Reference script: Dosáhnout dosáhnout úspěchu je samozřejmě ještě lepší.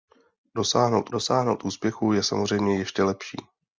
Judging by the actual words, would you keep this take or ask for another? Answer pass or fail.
pass